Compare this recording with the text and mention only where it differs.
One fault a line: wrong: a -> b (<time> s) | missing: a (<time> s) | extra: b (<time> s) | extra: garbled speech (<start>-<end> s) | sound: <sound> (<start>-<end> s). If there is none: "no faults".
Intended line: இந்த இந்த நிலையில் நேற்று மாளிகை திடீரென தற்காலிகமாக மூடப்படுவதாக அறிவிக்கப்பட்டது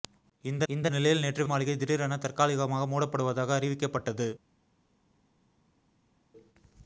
no faults